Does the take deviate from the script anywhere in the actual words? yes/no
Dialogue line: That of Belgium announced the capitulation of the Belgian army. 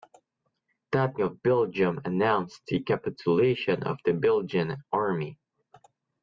no